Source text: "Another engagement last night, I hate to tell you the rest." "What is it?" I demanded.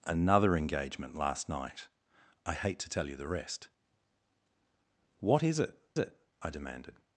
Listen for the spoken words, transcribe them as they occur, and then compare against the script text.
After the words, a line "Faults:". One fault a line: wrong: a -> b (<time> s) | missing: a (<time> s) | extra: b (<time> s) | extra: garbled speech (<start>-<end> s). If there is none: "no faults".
"Another engagement last night, I hate to tell you the rest." "What is it it?" I demanded.
Faults:
extra: it (6.0 s)